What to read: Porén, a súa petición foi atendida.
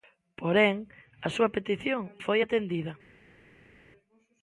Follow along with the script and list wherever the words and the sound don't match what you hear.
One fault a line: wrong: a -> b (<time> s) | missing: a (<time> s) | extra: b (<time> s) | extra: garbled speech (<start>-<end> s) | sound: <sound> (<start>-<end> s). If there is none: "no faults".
no faults